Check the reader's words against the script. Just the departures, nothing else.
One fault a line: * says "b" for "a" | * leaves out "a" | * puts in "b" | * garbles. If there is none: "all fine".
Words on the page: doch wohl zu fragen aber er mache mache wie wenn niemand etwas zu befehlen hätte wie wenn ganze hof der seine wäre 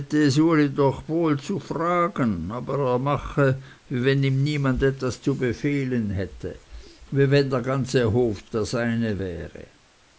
* leaves out "mache"
* puts in "ihm"
* puts in "der"